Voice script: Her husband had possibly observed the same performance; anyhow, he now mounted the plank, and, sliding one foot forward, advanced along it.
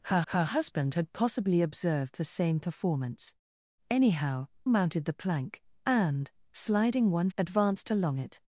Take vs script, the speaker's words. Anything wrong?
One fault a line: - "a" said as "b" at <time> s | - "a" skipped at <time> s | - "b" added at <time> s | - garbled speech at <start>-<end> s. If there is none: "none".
- "her" added at 0.3 s
- "he now" skipped at 4.5 s
- "foot forward" skipped at 7.3 s